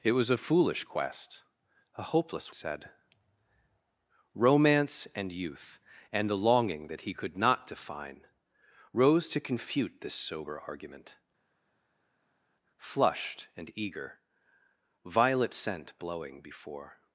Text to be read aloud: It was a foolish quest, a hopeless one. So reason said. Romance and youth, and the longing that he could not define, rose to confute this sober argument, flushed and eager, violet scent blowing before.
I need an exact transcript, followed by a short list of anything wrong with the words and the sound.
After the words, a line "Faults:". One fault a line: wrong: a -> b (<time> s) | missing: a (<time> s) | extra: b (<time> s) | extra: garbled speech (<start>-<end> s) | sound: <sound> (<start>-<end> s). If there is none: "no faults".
It was a foolish quest, a hopeless said. Romance and youth, and the longing that he could not define, rose to confute this sober argument, flushed and eager, violet scent blowing before.
Faults:
missing: one So reason (2.5 s)